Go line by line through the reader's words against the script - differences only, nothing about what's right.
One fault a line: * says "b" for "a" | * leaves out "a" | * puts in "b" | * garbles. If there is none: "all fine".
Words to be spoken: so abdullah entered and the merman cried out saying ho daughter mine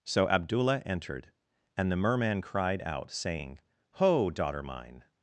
all fine